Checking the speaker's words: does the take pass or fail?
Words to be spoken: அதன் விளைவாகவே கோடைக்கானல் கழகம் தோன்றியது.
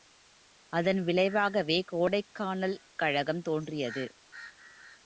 pass